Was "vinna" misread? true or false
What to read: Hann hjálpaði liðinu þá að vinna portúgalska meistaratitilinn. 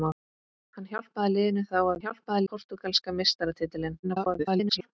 true